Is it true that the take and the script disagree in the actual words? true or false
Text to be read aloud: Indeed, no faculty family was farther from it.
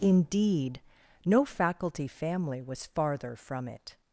false